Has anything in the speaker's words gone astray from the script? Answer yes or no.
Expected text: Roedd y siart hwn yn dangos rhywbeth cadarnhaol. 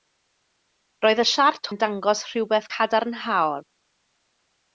yes